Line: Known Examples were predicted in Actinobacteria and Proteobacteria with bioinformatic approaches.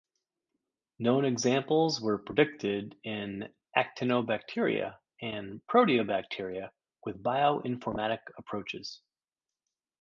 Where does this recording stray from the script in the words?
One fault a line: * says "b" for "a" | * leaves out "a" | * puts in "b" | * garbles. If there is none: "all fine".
all fine